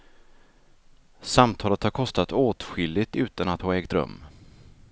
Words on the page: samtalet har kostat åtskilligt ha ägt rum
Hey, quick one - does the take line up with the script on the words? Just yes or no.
no